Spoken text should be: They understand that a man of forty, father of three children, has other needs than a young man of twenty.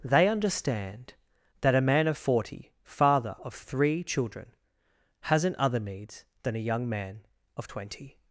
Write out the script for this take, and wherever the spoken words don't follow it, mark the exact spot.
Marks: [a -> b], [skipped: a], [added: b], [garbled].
They understand that a man of forty, father of three children, [has -> hasn't] other needs than a young man of twenty.